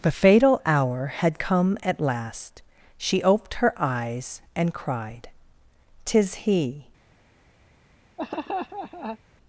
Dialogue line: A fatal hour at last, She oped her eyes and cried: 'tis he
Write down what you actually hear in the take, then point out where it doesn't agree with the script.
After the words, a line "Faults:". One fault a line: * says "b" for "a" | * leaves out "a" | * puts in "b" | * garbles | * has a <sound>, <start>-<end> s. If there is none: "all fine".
The fatal hour had come at last, She oped her eyes and cried: 'tis he
Faults:
* says "The" for "A"
* puts in "had come"
* has a laugh, 8.2-9.2 s